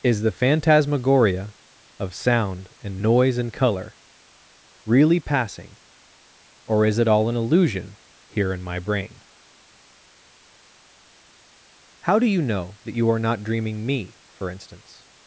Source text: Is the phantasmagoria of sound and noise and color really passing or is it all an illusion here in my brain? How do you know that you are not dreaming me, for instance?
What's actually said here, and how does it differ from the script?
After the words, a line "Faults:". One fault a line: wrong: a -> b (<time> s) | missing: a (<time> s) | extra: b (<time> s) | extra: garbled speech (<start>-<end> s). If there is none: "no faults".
Is the phantasmagoria of sound and noise and color really passing or is it all an illusion here in my brain? How do you know that you are not dreaming me, for instance?
Faults:
no faults